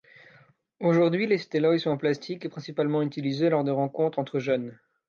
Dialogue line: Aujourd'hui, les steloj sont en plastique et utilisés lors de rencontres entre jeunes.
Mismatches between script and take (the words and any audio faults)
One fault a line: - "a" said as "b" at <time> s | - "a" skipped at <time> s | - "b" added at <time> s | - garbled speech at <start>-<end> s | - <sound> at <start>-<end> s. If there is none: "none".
- "principalement" added at 2.5 s